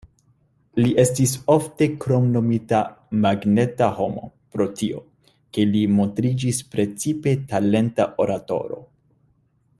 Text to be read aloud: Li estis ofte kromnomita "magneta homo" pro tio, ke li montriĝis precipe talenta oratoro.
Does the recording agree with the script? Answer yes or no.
yes